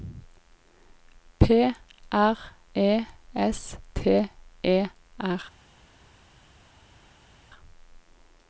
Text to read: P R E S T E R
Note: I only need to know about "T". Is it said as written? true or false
true